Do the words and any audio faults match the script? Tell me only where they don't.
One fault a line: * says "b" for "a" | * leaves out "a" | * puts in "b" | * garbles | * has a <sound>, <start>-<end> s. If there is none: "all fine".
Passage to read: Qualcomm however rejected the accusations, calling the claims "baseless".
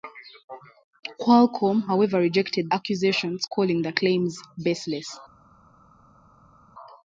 * leaves out "the"